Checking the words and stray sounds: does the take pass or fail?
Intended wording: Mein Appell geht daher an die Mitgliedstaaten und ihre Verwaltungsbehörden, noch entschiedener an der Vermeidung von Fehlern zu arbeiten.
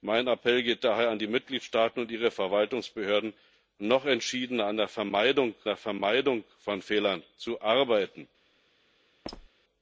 fail